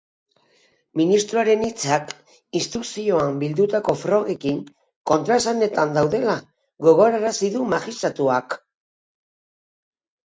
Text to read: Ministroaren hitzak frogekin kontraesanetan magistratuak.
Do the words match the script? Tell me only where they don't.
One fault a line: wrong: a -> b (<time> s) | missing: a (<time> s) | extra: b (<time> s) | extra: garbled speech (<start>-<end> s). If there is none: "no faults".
extra: instrukzioan bildutako (2.6 s)
extra: daudela gogorarazi du (6.0 s)